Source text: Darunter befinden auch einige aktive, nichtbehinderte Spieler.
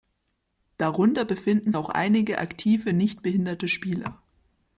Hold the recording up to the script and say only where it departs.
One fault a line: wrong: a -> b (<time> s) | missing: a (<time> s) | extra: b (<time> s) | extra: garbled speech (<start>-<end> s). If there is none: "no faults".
no faults